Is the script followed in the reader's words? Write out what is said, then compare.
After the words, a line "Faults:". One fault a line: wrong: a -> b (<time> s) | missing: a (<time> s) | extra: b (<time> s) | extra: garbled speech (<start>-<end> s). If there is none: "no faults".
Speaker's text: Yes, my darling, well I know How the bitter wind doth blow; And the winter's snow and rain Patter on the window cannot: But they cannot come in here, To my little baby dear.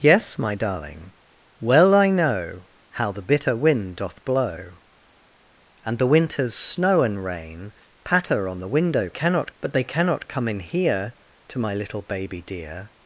Yes, my darling, well I know How the bitter wind doth blow; And the winter's snow and rain Patter on the window cannot: But they cannot come in here, To my little baby dear.
Faults:
no faults